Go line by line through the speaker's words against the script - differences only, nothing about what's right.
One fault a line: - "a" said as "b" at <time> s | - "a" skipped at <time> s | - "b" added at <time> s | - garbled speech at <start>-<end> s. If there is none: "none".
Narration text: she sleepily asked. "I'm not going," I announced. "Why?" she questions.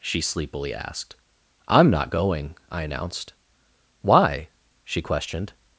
- "questions" said as "questioned" at 5.0 s